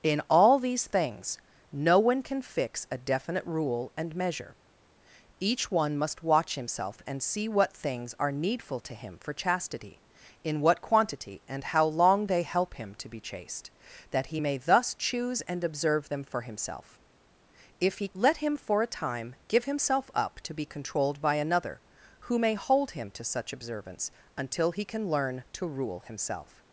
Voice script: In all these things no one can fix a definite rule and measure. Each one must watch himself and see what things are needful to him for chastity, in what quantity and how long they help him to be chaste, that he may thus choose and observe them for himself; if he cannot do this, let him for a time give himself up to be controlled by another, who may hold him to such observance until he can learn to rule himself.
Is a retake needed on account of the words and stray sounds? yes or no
yes